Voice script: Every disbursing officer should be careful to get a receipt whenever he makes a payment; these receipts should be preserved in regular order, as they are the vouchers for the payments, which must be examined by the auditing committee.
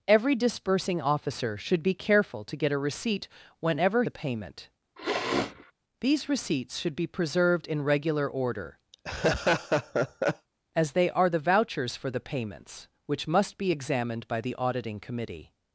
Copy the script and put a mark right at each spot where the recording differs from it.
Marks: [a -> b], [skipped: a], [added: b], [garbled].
Every disbursing officer should be careful to get a receipt whenever [skipped: he makes] a payment; these receipts should be preserved in regular order, as they are the vouchers for the payments, which must be examined by the auditing committee.